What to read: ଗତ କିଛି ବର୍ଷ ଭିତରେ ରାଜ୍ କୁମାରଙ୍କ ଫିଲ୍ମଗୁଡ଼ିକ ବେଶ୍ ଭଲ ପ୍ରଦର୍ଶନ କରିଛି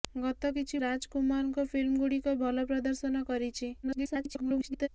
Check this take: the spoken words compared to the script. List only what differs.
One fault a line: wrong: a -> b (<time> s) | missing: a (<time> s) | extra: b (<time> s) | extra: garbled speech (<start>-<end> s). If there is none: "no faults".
missing: ବର୍ଷ ଭିତରେ (0.8 s)
missing: ବେଶ୍ (2.4 s)
extra: garbled speech (3.8-4.9 s)